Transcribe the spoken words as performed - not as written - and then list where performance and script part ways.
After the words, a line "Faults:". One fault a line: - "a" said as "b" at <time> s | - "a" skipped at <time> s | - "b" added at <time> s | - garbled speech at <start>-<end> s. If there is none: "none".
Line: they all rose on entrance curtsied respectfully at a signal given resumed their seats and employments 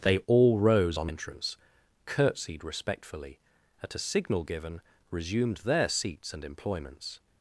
they all rose on entrance curtsied respectfully at a signal given resumed their seats and employments
Faults:
none